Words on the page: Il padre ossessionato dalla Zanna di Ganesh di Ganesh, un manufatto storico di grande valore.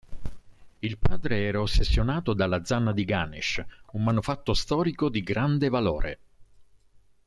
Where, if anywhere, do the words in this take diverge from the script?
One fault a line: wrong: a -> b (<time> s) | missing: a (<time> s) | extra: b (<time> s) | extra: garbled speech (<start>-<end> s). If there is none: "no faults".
extra: era (1.4 s)
missing: di Ganesh (3.6 s)